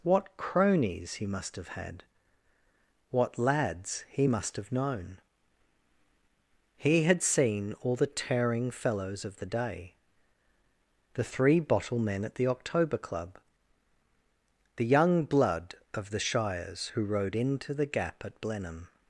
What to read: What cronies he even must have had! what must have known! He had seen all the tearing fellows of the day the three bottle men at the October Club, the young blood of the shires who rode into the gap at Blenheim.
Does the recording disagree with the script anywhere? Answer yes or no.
yes